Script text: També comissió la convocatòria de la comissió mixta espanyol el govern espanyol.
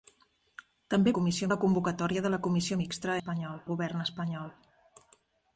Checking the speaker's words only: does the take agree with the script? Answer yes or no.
yes